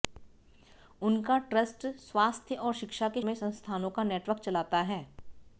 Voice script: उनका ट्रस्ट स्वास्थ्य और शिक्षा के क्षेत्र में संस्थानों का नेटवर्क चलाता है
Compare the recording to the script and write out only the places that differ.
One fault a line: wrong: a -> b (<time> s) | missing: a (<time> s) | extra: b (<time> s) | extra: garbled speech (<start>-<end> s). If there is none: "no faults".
missing: क्षेत्र (3.2 s)